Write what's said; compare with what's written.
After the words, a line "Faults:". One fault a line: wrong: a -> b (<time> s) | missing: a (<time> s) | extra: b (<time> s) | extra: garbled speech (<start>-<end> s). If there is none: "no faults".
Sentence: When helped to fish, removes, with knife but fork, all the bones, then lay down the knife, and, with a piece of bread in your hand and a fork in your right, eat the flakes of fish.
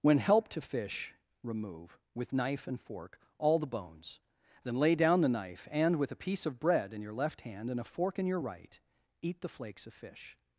When helped to fish, remove, with knife and fork, all the bones, then lay down the knife, and, with a piece of bread in your left hand and a fork in your right, eat the flakes of fish.
Faults:
wrong: removes -> remove (1.4 s)
wrong: but -> and (2.6 s)
extra: left (7.1 s)